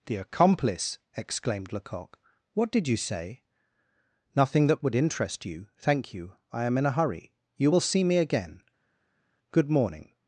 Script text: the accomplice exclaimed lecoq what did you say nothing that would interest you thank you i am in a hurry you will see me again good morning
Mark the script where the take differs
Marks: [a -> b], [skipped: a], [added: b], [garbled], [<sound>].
the accomplice exclaimed lecoq what did you say nothing that would interest you thank you i am in a hurry you will see me again good morning